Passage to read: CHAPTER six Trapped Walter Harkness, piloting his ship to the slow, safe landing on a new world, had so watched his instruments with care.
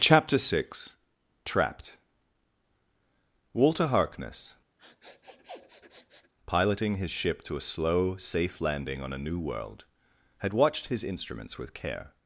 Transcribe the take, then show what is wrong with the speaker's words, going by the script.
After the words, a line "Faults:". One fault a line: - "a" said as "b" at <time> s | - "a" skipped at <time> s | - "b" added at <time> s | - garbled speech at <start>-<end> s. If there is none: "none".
CHAPTER six Trapped Walter Harkness, piloting his ship to a slow, safe landing on a new world, had watched his instruments with care.
Faults:
- "the" said as "a" at 7.6 s
- "so" skipped at 10.5 s